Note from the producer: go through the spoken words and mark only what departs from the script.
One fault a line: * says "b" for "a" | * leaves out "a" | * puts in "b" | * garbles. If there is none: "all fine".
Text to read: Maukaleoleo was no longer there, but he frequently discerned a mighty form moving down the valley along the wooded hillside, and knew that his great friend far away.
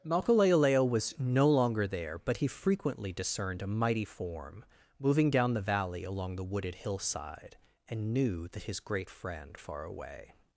all fine